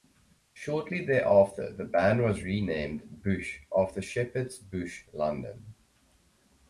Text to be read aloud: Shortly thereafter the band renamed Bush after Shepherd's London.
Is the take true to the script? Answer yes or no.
no